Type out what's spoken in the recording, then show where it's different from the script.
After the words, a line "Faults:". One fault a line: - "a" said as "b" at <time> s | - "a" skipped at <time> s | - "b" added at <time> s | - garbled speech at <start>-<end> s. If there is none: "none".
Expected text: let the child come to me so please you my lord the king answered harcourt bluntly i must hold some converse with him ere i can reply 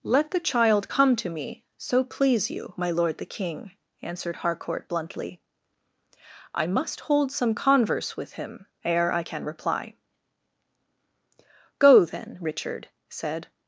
let the child come to me so please you my lord the king answered harcourt bluntly i must hold some converse with him ere i can reply go then richard said
Faults:
- "go then richard said" added at 11.8 s